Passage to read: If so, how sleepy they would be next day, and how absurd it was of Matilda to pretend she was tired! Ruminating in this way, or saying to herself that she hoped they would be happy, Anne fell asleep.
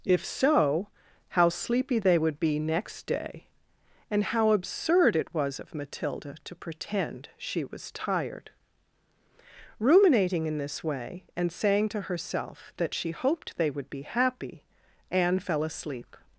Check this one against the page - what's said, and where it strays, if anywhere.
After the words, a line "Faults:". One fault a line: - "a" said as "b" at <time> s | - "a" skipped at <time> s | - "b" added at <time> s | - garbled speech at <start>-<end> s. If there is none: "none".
If so, how sleepy they would be next day, and how absurd it was of Matilda to pretend she was tired! Ruminating in this way, and saying to herself that she hoped they would be happy, Anne fell asleep.
Faults:
- "or" said as "and" at 11.3 s